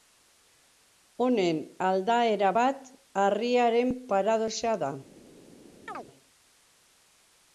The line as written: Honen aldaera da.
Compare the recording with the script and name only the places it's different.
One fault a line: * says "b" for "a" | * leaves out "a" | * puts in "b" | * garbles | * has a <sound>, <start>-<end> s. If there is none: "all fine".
* puts in "bat harriaren paradoxa"
* has a chirp, 5.9-6.1 s